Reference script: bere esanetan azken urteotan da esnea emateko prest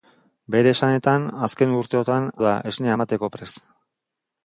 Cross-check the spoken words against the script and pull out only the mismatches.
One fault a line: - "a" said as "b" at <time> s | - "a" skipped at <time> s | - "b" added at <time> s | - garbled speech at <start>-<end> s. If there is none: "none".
none